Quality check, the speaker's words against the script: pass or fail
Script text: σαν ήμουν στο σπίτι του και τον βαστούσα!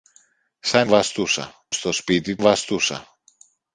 fail